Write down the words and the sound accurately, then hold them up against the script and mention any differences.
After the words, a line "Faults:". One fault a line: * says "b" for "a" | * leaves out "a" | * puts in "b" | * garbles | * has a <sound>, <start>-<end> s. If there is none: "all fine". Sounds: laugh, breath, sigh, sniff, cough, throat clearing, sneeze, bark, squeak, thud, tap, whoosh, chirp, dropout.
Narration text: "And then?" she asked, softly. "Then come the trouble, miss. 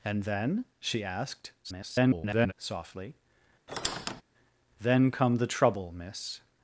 "And then?" she asked, [garbled] softly. "Then come the trouble, miss.
Faults:
* garbles
* has a squeak, 3.7-4.2 s